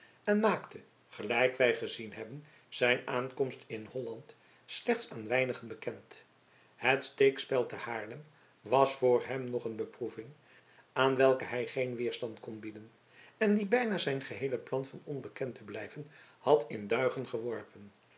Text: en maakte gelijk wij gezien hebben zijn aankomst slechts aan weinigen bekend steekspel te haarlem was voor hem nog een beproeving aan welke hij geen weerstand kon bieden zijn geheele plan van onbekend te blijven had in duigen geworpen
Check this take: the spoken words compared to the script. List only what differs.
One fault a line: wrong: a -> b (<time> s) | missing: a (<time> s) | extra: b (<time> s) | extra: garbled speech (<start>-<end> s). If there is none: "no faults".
extra: in holland (3.7 s)
extra: het (6.8 s)
extra: en die bijna (13.4 s)